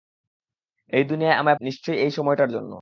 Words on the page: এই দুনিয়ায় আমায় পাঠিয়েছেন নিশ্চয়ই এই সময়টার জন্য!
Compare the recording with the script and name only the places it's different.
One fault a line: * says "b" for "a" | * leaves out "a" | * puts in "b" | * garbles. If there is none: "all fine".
* leaves out "পাঠিয়েছেন"